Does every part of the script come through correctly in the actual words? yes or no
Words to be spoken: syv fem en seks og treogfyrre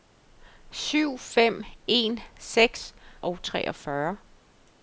yes